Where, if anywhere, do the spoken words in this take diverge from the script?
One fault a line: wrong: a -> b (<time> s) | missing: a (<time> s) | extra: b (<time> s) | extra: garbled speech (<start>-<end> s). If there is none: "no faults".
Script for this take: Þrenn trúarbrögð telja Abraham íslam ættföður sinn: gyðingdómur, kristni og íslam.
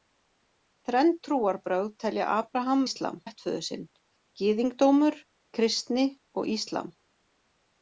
no faults